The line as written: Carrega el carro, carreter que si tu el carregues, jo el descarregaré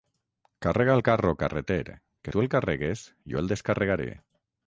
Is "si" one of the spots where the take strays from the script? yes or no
yes